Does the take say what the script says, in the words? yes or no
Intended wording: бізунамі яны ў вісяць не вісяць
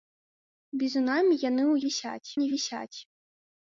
yes